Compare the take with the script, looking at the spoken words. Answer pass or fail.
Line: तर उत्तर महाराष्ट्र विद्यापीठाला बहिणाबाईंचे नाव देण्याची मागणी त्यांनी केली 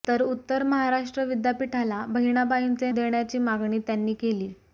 fail